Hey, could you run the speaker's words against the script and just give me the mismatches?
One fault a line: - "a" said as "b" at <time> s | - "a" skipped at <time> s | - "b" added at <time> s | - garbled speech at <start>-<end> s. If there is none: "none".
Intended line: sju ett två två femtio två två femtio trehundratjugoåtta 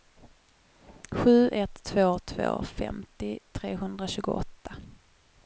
- "två två femtio" skipped at 3.4 s